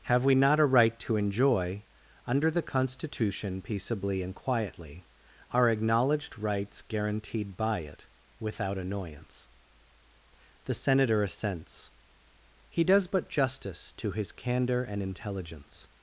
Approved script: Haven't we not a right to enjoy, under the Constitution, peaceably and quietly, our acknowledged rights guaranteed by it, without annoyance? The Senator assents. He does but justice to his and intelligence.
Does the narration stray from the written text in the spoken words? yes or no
yes